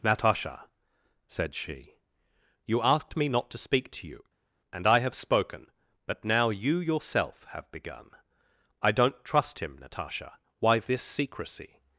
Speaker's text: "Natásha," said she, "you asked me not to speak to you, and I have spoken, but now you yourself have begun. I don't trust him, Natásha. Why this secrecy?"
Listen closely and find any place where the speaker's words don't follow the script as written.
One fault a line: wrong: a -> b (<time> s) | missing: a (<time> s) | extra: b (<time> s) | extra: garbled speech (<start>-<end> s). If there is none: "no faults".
no faults